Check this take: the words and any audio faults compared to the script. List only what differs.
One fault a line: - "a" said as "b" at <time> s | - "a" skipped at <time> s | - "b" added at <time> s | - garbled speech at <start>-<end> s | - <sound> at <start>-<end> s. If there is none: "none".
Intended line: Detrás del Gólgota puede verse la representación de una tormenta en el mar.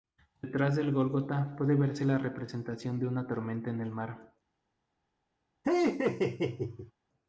- laugh at 5.6-6.9 s